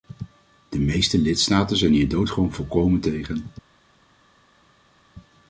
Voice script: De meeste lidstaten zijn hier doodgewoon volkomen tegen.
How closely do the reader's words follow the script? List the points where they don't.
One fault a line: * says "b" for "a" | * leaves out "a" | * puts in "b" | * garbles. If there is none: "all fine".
all fine